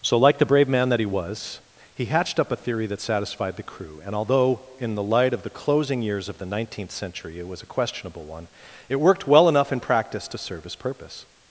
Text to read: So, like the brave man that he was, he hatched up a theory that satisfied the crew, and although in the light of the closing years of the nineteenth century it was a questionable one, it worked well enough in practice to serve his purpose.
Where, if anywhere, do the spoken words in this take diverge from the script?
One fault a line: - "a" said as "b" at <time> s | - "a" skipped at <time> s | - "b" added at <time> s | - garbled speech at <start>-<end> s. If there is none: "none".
none